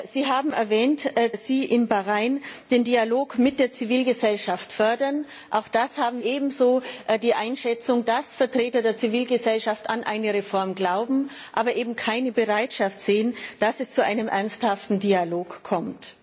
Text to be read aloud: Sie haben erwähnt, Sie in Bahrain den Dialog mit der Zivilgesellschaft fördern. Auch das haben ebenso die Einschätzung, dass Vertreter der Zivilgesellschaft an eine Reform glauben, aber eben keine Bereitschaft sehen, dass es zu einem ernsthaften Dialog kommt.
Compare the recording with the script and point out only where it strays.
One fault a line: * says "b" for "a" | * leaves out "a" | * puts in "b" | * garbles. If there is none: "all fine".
all fine